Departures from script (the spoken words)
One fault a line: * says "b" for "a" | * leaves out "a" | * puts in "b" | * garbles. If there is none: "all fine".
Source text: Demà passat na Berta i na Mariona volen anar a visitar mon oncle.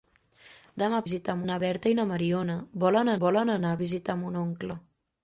* says "visitar" for "passat"
* puts in "volen"